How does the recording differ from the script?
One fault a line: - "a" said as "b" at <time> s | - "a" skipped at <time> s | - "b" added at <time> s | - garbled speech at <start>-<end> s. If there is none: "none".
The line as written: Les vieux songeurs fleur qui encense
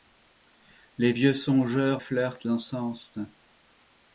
none